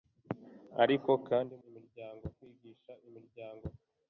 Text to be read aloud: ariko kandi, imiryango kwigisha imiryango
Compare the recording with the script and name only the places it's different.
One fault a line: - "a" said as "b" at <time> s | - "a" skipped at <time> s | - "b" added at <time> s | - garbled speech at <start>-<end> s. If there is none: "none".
none